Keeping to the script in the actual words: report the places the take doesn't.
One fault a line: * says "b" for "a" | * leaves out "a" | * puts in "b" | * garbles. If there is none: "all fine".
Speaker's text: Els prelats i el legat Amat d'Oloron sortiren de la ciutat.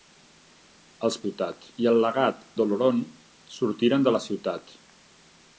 * says "ciutat" for "prelats"
* leaves out "Amat"